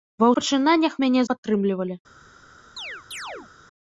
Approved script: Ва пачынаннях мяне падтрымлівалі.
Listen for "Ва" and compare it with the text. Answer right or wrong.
right